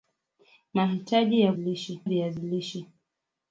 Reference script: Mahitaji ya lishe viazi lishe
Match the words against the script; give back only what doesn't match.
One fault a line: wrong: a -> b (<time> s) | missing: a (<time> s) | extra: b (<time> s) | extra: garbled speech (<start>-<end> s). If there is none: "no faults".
no faults